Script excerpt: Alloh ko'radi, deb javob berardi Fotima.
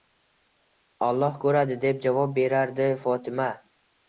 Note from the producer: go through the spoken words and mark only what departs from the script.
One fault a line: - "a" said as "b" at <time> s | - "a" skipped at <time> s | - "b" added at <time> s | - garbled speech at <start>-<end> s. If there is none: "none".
none